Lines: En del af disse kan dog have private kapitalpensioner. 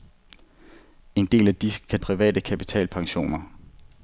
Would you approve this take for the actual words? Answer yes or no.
no